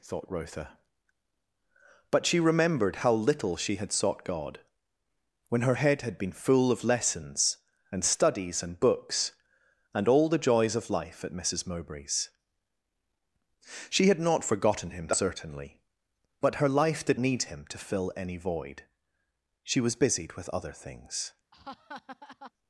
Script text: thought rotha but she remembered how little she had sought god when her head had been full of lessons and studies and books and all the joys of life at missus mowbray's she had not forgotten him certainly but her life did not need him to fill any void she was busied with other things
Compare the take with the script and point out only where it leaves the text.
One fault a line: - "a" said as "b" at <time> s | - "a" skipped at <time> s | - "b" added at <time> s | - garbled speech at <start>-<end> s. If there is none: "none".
- "not" skipped at 17.2 s